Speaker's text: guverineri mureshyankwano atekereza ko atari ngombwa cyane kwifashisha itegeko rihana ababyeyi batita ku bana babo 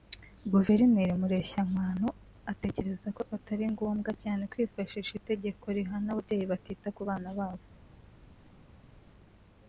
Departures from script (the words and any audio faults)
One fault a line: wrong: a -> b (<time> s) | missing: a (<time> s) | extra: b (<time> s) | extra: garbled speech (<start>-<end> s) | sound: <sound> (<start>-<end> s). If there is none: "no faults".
no faults